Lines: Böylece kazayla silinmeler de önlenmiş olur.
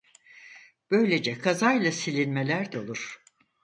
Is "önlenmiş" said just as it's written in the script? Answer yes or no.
no